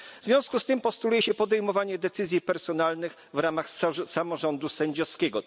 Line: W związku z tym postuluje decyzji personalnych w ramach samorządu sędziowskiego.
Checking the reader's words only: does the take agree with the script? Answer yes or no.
no